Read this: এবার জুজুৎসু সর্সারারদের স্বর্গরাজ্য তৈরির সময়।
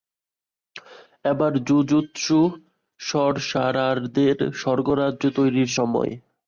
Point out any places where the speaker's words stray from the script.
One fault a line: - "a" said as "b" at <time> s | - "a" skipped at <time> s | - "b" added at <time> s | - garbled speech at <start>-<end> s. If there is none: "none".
none